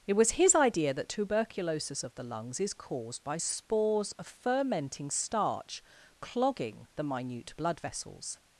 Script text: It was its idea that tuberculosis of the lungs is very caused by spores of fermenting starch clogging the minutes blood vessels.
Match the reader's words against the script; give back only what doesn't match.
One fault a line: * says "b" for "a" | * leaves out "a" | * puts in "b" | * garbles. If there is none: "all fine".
* says "his" for "its"
* leaves out "very"
* says "minute" for "minutes"